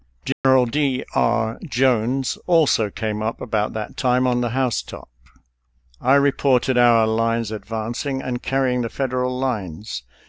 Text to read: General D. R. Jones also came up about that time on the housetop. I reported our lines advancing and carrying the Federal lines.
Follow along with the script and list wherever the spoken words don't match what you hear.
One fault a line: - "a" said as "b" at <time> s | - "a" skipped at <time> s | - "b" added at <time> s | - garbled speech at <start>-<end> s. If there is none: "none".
none